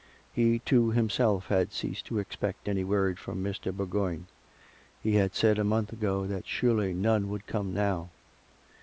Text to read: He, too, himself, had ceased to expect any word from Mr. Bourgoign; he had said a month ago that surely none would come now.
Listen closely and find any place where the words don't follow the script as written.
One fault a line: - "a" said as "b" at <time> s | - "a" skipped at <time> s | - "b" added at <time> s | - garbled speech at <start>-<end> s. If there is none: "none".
none